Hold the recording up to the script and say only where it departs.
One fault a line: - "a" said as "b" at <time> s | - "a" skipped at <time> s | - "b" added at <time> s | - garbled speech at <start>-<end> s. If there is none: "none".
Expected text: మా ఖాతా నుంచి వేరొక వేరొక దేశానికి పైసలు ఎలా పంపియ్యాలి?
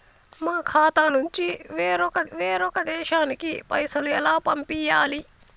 none